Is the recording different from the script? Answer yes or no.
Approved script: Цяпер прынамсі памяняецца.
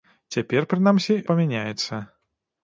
no